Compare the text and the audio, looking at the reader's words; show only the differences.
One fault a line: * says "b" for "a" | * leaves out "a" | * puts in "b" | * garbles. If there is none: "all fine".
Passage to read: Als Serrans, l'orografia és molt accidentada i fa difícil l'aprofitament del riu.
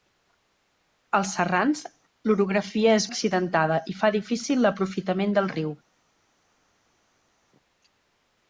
* leaves out "molt"